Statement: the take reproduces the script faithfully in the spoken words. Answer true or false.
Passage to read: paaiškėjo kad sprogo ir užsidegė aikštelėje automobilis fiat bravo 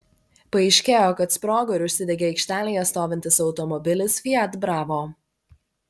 false